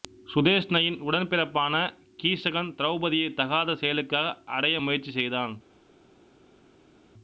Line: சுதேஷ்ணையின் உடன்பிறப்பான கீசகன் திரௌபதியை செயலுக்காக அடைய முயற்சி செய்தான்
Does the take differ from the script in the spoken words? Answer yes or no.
yes